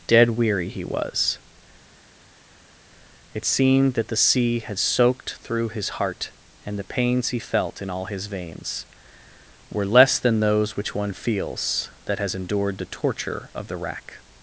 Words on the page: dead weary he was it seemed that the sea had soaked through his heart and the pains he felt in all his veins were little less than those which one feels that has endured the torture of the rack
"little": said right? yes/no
no